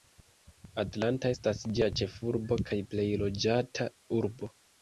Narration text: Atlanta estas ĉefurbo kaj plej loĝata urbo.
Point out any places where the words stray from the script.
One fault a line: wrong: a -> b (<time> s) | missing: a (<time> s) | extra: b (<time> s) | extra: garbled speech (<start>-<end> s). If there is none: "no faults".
extra: ĝia (1.8 s)